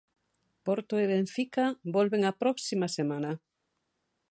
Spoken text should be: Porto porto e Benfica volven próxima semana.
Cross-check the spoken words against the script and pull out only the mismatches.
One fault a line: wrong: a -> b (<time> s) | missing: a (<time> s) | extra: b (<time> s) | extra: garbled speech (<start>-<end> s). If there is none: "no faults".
missing: porto (0.9 s)
extra: a (2.2 s)